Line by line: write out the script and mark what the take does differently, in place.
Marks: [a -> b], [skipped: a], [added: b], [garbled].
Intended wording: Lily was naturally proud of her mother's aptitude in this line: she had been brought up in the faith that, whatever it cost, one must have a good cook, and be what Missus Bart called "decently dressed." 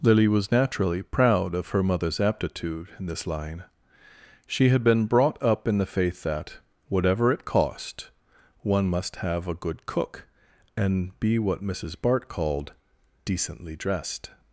Lily was naturally proud of her mother's aptitude in this line: she had been brought up in the faith that, whatever it cost, one must have a good cook, and be what Missus Bart called "decently dressed."